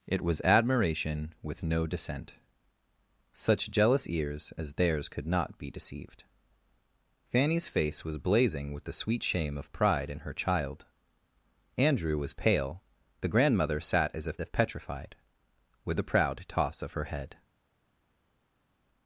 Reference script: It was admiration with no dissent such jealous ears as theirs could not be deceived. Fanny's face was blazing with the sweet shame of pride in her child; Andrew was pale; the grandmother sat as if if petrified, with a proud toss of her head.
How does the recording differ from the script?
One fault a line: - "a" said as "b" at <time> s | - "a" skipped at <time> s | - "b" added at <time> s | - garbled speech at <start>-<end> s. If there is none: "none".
none